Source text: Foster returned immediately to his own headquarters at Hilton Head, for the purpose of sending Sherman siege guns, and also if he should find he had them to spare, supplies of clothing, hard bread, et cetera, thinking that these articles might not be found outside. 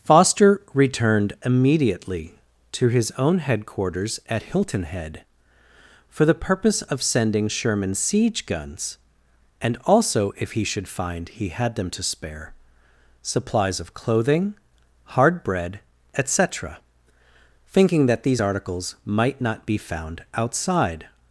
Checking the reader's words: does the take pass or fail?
pass